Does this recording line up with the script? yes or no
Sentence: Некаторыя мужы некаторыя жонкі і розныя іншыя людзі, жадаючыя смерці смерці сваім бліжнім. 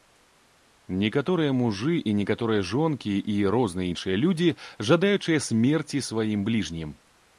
no